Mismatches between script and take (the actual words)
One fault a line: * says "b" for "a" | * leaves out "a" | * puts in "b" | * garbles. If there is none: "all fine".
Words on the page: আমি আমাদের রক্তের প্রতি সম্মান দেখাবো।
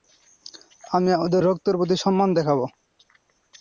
all fine